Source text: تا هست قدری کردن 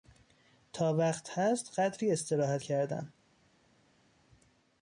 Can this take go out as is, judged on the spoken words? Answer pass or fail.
fail